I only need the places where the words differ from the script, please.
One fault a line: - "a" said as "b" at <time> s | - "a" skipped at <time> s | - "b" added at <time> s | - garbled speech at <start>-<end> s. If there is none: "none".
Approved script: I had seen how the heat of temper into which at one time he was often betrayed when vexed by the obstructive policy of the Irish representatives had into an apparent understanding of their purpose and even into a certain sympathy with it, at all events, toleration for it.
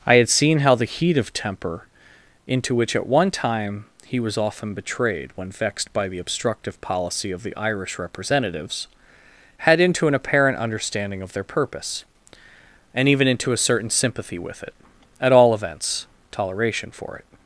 none